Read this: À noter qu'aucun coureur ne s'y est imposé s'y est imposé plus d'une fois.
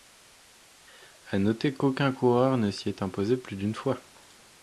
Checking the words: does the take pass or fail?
fail